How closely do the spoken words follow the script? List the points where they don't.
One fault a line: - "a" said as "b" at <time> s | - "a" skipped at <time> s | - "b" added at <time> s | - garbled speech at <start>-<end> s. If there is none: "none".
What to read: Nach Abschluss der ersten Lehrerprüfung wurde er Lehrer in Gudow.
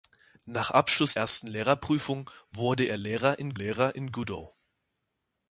- "der" skipped at 1.1 s
- "Lehrer in" added at 3.5 s